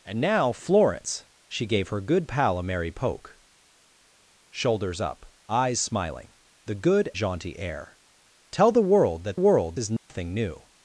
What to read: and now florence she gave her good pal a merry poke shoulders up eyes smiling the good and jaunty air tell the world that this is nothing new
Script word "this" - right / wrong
wrong